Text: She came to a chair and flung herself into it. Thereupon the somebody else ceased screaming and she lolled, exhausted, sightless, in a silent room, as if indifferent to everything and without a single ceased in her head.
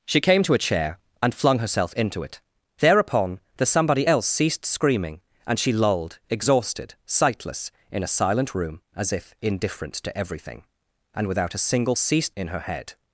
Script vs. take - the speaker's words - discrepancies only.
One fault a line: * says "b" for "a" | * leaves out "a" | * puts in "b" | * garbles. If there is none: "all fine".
all fine